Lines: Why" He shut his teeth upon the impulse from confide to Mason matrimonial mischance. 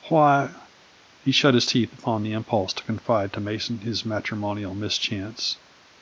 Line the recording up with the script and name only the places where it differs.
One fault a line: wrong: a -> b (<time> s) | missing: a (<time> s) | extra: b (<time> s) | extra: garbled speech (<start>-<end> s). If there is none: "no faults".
wrong: from -> to (2.8 s)
extra: his (3.8 s)